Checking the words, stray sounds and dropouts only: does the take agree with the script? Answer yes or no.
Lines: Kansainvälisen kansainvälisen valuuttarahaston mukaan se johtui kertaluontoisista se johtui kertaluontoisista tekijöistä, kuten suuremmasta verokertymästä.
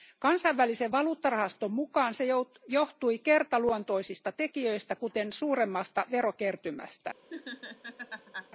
no